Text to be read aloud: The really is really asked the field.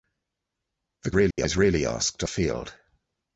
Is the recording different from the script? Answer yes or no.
no